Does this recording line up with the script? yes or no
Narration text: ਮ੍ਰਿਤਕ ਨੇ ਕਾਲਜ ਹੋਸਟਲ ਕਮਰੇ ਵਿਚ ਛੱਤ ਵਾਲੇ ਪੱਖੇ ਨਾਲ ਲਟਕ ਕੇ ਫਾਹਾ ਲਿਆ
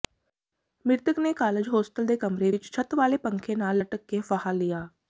no